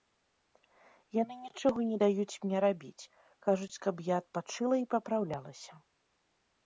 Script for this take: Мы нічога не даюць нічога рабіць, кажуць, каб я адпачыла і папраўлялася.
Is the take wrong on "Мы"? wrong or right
wrong